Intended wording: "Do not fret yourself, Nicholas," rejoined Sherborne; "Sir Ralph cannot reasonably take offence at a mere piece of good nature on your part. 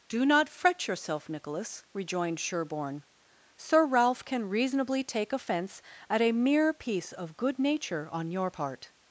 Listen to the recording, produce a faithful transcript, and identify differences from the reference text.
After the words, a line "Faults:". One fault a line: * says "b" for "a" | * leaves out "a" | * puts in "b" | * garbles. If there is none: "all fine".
"Do not fret yourself, Nicholas," rejoined Sherborne; "Sir Ralph can reasonably take offence at a mere piece of good nature on your part.
Faults:
* says "can" for "cannot"